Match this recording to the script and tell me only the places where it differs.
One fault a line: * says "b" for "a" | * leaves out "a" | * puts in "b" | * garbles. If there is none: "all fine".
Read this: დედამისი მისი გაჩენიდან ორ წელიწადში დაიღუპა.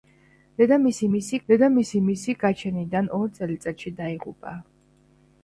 * puts in "დედამისი მისი"